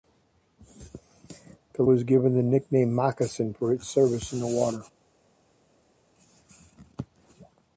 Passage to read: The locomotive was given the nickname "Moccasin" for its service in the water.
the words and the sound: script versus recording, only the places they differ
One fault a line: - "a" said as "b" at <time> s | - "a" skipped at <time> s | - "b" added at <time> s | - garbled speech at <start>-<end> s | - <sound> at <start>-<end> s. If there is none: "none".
- "locomotive" skipped at 1.8 s